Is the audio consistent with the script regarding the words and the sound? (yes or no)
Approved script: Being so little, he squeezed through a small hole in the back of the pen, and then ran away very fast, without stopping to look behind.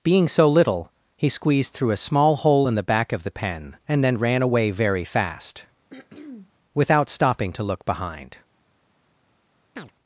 no